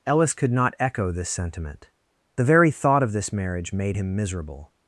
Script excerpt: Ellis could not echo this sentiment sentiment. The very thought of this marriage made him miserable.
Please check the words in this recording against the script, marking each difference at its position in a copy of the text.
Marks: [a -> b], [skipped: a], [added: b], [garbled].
Ellis could not echo this sentiment [skipped: sentiment.] The very thought of this marriage made him miserable.